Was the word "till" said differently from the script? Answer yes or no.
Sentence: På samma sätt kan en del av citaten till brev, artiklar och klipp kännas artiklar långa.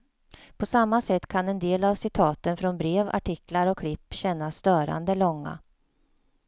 yes